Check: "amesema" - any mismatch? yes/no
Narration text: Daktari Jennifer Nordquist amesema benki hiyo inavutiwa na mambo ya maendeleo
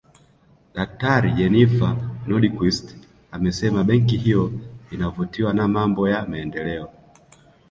no